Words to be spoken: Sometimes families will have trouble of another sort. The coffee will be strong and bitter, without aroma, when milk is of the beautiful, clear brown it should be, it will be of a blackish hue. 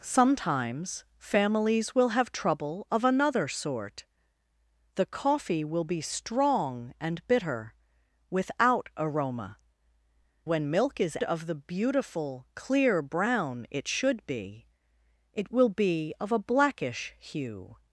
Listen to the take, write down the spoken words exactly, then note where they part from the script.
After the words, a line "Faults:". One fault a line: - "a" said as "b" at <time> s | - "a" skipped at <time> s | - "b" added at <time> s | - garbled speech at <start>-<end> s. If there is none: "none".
Sometimes families will have trouble of another sort. The coffee will be strong and bitter, without aroma, when milk is of the beautiful, clear brown it should be, it will be of a blackish hue.
Faults:
none